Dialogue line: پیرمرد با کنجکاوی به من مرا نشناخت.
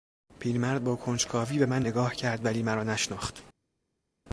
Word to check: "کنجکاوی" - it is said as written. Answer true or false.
true